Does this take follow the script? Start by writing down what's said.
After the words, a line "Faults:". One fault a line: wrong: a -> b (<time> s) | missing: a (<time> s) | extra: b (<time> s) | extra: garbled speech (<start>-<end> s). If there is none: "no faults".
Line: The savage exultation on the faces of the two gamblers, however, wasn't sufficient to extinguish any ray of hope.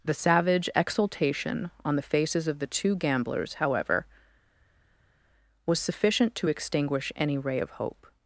The savage exultation on the faces of the two gamblers, however, was sufficient to extinguish any ray of hope.
Faults:
wrong: wasn't -> was (5.7 s)